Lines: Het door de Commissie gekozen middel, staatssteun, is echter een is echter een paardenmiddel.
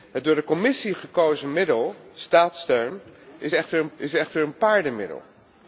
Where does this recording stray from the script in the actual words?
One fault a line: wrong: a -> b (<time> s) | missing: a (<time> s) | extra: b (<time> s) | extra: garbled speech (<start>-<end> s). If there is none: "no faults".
no faults